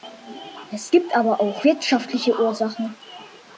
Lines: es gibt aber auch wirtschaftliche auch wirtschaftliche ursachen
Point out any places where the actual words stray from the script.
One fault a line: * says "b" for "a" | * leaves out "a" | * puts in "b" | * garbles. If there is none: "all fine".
* leaves out "auch wirtschaftliche"